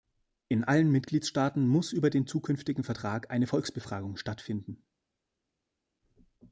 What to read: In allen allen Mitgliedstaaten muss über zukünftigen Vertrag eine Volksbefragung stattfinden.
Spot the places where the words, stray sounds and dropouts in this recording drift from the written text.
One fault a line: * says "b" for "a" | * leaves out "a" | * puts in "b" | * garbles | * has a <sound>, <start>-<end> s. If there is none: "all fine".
* leaves out "allen"
* puts in "den"